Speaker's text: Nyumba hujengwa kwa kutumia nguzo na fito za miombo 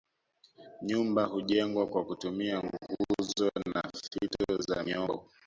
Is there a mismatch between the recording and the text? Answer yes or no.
no